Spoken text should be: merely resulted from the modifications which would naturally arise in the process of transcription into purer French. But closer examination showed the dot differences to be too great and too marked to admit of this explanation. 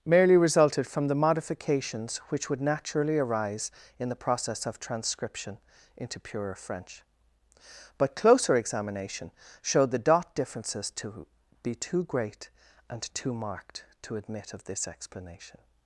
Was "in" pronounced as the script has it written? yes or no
yes